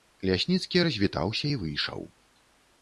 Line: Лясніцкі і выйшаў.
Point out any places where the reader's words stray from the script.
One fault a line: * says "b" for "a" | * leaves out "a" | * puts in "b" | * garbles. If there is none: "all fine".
* puts in "развітаўся"